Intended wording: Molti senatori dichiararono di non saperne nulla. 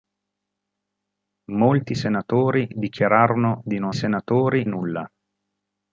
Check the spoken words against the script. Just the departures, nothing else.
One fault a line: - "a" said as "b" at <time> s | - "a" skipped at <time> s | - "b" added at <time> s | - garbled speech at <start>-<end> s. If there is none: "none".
- "saperne" said as "senatori" at 3.9 s